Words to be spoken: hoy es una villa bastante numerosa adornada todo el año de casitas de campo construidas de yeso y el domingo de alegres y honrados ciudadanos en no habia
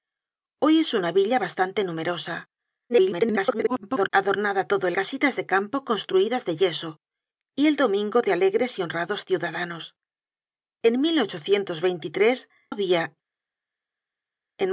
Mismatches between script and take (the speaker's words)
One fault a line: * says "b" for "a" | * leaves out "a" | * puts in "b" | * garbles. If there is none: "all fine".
* garbles
* leaves out "año de"
* leaves out "no"